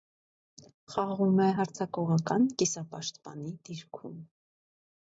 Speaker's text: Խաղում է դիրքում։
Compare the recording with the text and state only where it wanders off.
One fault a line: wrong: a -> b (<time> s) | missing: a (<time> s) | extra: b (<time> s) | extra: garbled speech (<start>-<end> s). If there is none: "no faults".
extra: հարձակողական կիսապաշտպանի (1.6 s)